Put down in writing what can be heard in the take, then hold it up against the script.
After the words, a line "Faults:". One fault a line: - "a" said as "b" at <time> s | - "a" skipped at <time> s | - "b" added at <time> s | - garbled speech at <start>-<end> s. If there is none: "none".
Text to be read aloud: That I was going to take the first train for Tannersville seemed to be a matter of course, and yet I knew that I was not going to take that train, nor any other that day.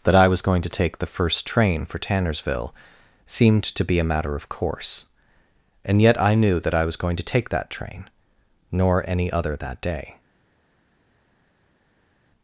That I was going to take the first train for Tannersville seemed to be a matter of course, and yet I knew that I was going to take that train, nor any other that day.
Faults:
- "not" skipped at 7.0 s